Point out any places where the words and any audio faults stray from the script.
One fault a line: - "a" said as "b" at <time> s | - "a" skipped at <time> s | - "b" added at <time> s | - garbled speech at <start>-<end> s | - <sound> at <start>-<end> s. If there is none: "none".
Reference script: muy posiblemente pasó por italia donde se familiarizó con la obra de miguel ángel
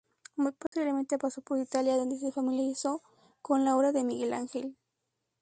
- dropout at 0.7-0.7 s